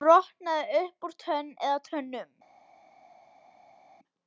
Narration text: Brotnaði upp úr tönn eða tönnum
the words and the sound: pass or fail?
pass